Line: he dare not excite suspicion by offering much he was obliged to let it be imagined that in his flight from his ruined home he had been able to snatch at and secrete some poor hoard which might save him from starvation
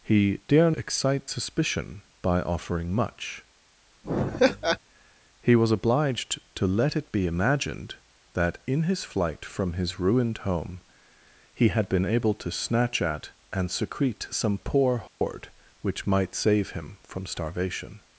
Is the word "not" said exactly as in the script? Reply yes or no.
no